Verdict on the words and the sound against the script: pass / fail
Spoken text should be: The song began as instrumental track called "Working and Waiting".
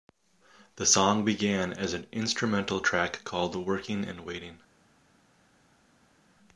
fail